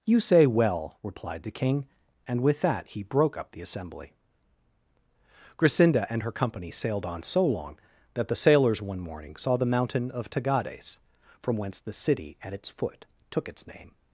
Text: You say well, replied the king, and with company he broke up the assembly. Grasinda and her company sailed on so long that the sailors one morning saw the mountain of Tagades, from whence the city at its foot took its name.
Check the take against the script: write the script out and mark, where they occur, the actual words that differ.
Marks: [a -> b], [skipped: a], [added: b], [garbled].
You say well, replied the king, and with [company -> that] he broke up the assembly. Grasinda and her company sailed on so long that the sailors one morning saw the mountain of Tagades, from whence the city at its foot took its name.